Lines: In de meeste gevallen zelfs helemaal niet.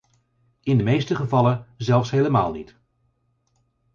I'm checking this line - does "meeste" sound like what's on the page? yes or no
yes